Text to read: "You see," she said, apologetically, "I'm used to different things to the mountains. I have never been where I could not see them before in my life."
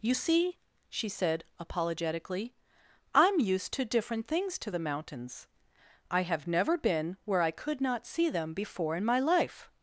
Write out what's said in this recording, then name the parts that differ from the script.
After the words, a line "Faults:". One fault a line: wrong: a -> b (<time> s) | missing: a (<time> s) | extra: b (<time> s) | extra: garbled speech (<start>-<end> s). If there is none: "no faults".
"You see," she said, apologetically, "I'm used to different things to the mountains. I have never been where I could not see them before in my life."
Faults:
no faults